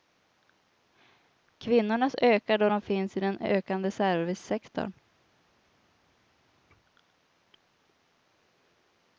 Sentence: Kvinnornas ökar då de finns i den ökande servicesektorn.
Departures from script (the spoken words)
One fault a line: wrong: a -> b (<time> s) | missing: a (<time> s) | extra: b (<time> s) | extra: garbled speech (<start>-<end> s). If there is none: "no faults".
no faults